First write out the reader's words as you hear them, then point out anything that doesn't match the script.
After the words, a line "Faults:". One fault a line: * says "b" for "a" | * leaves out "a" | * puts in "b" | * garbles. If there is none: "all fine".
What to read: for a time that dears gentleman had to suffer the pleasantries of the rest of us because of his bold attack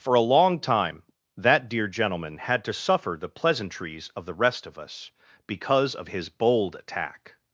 for a long time that dear gentleman had to suffer the pleasantries of the rest of us because of his bold attack
Faults:
* puts in "long"
* says "dear" for "dears"